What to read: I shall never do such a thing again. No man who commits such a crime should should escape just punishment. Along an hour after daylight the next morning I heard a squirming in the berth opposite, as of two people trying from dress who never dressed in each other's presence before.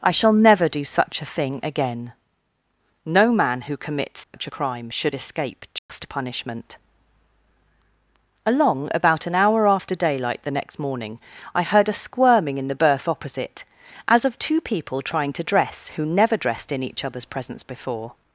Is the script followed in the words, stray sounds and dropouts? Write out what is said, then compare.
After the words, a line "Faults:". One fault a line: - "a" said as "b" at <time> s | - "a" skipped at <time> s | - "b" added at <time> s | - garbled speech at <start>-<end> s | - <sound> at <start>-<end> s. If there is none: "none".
I shall never do such a thing again. No man who commits such a crime should escape just punishment. Along about an hour after daylight the next morning I heard a squirming in the berth opposite, as of two people trying to dress who never dressed in each other's presence before.
Faults:
- dropout at 4.2-4.3 s
- "should" skipped at 5.1 s
- dropout at 5.8-5.9 s
- "about" added at 8.9 s
- "from" said as "to" at 15.3 s